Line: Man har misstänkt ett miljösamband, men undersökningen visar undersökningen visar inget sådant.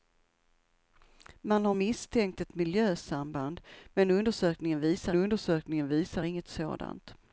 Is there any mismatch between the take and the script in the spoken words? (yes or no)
no